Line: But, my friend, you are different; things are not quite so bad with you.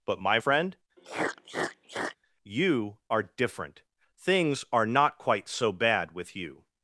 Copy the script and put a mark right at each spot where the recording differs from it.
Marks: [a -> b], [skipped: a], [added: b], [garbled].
But, my friend, you are different; things are not quite so bad with you.